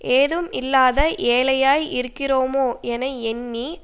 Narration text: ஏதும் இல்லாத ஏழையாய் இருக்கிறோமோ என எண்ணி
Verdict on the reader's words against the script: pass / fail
pass